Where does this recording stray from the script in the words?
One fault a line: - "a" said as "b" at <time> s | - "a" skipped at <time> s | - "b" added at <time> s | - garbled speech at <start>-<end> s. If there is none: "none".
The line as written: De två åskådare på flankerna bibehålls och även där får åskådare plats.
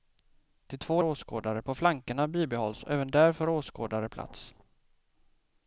none